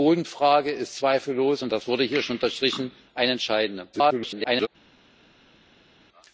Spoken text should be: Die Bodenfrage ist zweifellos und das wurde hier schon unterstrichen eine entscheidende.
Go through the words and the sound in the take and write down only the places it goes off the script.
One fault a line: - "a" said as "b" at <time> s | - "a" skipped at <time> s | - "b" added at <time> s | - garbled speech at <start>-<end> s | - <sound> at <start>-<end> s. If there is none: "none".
- garbled speech at 3.9-4.7 s